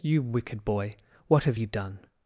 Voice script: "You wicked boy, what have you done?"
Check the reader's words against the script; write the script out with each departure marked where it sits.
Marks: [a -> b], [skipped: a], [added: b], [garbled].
"You wicked boy, what have you done?"